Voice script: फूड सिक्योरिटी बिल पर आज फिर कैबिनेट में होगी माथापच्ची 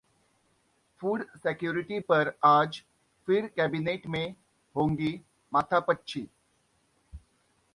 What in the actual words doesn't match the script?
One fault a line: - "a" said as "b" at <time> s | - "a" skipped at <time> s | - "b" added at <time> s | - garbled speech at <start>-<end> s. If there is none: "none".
- "बिल" skipped at 2.0 s